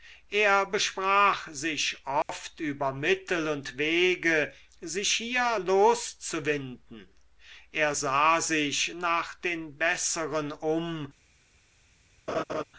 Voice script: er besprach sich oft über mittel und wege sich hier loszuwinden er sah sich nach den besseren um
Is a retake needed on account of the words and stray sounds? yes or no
yes